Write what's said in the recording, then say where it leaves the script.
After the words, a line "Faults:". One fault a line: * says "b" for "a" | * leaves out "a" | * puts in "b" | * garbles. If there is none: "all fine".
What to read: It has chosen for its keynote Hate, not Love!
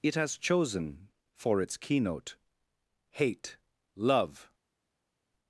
It has chosen for its keynote Hate, Love!
Faults:
* leaves out "not"